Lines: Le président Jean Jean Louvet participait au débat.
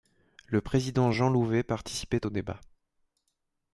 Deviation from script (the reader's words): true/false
true